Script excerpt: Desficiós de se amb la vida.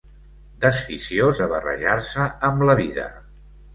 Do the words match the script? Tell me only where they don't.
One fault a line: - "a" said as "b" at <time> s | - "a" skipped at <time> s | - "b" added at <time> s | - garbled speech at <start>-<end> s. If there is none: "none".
- "barrejar" added at 1.5 s